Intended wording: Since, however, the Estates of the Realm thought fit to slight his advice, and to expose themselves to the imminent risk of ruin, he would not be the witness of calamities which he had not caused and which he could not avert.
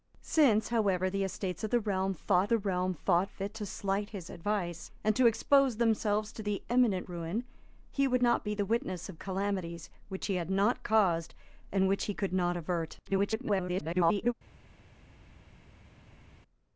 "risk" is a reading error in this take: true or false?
true